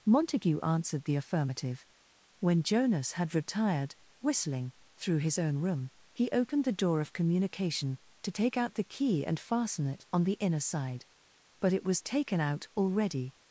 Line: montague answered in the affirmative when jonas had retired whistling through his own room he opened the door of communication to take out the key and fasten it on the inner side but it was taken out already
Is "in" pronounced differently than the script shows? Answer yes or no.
yes